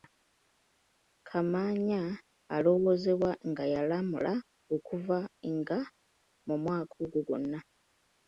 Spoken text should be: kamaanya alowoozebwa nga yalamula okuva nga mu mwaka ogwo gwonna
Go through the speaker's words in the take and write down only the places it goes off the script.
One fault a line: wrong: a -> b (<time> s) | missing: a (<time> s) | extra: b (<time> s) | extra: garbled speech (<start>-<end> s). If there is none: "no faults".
no faults